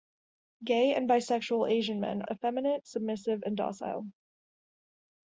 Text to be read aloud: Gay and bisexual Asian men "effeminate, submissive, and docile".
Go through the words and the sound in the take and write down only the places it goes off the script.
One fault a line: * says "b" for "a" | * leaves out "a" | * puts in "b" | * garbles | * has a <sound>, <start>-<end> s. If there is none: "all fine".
all fine